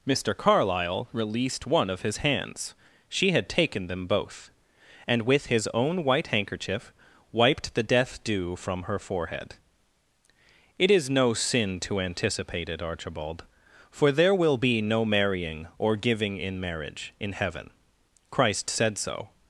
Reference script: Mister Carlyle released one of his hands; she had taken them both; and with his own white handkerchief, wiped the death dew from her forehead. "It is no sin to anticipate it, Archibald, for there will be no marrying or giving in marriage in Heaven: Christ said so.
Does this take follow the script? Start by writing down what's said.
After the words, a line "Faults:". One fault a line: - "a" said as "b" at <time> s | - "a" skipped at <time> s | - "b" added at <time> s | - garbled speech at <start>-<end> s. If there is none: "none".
Mister Carlyle released one of his hands; she had taken them both; and with his own white handkerchief, wiped the death dew from her forehead. "It is no sin to anticipate it, Archibald, for there will be no marrying or giving in marriage in Heaven: Christ said so.
Faults:
none